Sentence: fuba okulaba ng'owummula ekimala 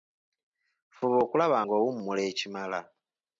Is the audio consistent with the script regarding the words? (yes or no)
yes